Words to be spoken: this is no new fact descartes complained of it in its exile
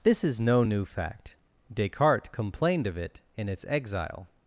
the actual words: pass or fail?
pass